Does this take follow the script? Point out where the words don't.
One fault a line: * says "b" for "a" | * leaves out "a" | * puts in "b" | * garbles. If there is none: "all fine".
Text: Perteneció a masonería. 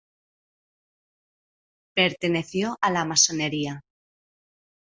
* puts in "la"